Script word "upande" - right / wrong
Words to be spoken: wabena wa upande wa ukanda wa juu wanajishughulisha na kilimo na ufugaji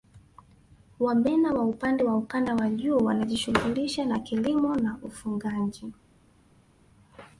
right